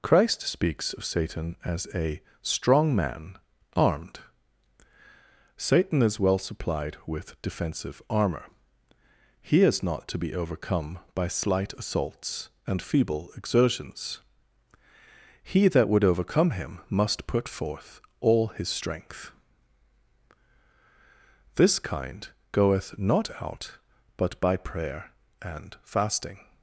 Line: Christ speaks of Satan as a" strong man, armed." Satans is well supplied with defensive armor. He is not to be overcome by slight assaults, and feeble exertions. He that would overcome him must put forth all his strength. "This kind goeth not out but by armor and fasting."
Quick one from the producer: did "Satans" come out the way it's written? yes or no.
no